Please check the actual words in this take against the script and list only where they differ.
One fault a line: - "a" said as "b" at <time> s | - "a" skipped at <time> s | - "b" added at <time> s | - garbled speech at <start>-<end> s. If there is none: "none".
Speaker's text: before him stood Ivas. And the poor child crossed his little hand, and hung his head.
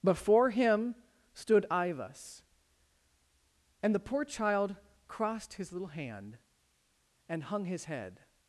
none